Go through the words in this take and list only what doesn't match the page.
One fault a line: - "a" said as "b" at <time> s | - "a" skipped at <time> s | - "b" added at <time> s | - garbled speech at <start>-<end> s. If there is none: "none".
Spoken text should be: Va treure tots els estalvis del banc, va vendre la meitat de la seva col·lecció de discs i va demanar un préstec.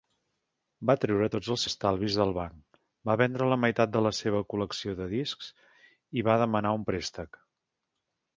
none